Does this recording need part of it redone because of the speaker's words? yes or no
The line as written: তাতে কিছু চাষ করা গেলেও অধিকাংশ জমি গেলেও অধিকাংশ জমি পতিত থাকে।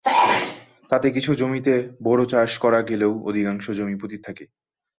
yes